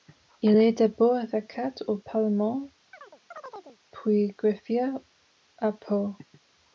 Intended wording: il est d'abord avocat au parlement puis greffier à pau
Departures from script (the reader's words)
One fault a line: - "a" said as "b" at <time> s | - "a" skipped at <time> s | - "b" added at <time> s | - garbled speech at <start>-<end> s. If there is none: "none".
none